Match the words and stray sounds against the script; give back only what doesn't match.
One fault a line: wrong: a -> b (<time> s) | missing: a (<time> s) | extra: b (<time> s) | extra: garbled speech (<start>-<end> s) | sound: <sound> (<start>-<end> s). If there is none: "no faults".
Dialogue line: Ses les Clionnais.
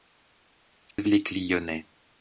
sound: dropout (0.9-1.0 s)